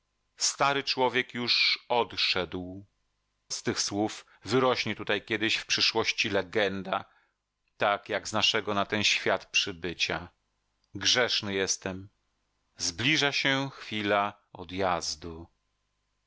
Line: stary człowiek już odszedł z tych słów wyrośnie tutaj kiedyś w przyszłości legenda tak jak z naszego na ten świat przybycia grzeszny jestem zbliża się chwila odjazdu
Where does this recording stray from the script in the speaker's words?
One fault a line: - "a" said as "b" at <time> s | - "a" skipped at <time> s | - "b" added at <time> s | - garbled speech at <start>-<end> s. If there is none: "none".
none